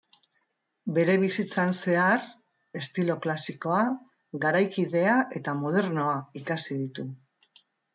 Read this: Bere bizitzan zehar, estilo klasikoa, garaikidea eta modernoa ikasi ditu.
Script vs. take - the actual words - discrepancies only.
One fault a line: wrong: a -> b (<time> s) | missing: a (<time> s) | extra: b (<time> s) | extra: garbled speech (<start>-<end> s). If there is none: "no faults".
no faults